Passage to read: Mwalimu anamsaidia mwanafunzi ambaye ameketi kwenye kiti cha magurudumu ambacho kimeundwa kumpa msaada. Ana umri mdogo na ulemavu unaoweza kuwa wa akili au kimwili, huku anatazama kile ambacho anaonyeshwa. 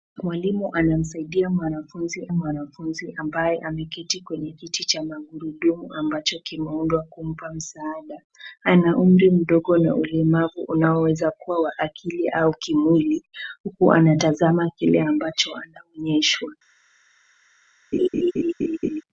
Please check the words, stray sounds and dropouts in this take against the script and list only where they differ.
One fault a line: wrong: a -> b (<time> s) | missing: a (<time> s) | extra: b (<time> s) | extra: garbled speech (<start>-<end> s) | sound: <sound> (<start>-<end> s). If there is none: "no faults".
extra: mwanafunzi (2.3 s)
sound: laugh (17.9-19.0 s)